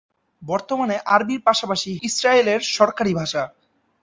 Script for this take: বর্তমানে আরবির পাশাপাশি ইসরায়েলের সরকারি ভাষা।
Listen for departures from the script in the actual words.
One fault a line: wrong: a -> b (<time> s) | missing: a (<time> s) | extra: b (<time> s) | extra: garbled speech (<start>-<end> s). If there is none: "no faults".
no faults